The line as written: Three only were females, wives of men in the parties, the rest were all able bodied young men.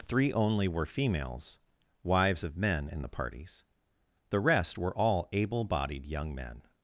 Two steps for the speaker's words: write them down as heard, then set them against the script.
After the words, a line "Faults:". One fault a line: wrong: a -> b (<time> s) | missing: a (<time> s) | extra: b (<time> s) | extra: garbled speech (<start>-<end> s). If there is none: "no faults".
Three only were females, wives of men in the parties, the rest were all able bodied young men.
Faults:
no faults